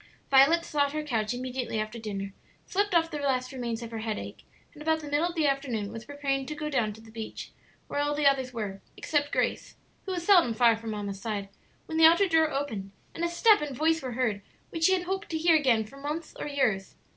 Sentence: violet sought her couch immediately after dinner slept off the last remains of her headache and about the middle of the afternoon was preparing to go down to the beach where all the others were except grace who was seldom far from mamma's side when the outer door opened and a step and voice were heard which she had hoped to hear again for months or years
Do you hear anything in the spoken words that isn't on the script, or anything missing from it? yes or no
no